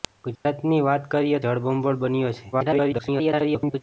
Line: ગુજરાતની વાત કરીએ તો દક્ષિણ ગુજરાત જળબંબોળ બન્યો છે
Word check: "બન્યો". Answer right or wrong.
right